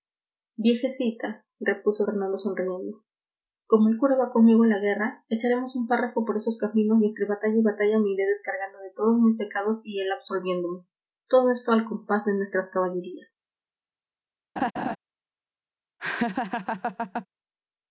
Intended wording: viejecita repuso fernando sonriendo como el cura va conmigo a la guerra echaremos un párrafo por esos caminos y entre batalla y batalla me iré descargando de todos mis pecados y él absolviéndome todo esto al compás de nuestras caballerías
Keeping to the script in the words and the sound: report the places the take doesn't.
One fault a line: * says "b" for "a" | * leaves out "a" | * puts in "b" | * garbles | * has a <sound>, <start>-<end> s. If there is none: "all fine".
* has a laugh, 14.6-15.0 s
* has a laugh, 16.0-17.3 s